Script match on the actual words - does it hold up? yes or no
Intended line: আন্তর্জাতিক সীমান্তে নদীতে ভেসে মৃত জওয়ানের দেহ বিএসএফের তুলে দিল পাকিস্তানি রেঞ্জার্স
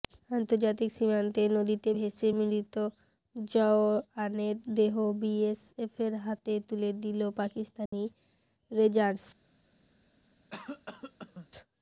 no